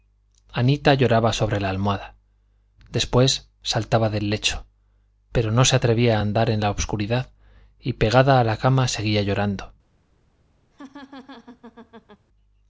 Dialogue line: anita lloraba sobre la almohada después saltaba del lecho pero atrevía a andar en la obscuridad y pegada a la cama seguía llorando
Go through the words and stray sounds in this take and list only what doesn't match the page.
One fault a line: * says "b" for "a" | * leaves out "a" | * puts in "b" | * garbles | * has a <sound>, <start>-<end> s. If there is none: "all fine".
* puts in "no se"
* has a laugh, 10.7-12.3 s